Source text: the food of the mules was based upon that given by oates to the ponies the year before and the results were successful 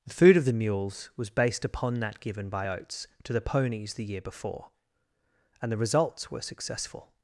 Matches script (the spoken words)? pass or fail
pass